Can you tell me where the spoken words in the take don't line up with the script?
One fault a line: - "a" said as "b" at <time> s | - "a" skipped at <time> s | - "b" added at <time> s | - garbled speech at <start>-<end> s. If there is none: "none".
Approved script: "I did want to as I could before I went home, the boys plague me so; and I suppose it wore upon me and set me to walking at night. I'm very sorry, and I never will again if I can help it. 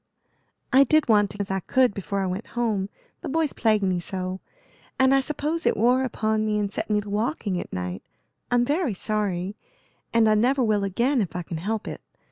none